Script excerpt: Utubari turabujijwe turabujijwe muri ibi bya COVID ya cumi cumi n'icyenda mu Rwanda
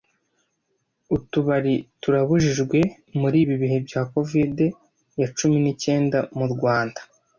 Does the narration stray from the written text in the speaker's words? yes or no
yes